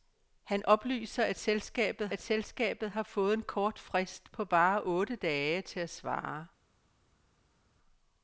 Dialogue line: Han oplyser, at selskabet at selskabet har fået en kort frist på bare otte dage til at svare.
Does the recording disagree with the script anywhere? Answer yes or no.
no